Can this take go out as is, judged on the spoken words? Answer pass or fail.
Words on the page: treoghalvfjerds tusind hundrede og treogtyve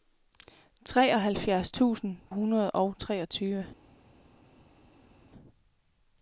pass